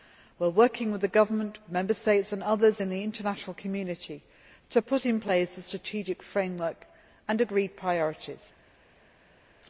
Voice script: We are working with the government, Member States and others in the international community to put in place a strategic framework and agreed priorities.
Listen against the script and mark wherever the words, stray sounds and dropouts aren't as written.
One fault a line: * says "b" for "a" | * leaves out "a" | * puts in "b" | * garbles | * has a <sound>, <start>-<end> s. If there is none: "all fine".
all fine